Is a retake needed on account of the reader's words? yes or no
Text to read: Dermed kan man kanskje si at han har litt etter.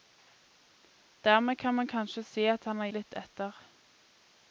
no